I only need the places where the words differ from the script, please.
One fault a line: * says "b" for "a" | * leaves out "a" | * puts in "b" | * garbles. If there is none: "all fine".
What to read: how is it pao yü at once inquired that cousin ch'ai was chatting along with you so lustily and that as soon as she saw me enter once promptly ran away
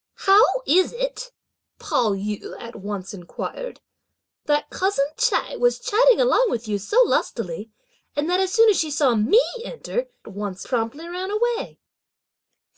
all fine